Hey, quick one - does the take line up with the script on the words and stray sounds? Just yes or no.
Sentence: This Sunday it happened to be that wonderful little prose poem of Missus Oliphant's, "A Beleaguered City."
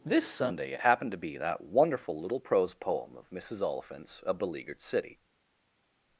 yes